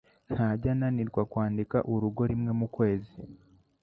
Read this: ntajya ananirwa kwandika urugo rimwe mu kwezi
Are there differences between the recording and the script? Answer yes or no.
no